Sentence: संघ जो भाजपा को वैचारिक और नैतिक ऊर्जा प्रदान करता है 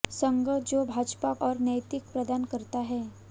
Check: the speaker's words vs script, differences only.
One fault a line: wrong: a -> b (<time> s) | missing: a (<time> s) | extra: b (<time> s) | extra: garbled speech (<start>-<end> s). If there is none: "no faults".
missing: को वैचारिक (1.3 s)
missing: ऊर्जा (2.1 s)